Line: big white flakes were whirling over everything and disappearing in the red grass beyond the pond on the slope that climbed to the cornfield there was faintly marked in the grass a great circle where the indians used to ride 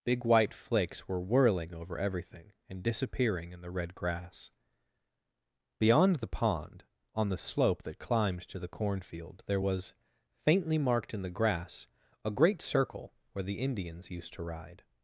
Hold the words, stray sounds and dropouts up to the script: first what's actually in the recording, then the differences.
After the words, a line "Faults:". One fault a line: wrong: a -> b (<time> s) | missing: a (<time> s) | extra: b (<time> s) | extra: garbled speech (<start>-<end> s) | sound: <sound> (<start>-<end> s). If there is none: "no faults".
big white flakes were whirling over everything and disappearing in the red grass beyond the pond on the slope that climbed to the cornfield there was faintly marked in the grass a great circle where the indians used to ride
Faults:
no faults